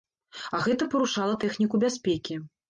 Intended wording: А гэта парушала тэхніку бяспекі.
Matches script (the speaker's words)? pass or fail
pass